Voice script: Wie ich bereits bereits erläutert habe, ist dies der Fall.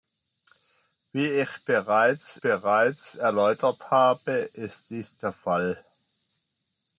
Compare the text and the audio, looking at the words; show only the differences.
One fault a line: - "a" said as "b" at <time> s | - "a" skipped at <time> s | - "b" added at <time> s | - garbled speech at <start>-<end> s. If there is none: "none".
none